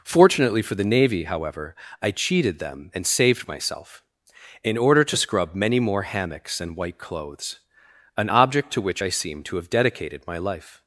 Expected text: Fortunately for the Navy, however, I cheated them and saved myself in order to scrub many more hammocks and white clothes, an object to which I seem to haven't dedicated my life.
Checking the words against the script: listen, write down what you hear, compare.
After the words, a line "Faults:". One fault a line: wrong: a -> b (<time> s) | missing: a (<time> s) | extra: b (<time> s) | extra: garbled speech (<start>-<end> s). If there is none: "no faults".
Fortunately for the Navy, however, I cheated them and saved myself in order to scrub many more hammocks and white clothes, an object to which I seem to have dedicated my life.
Faults:
wrong: haven't -> have (9.6 s)